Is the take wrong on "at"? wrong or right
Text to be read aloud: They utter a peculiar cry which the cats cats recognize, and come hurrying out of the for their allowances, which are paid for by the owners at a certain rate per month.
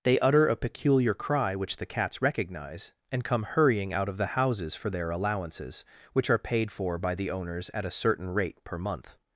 right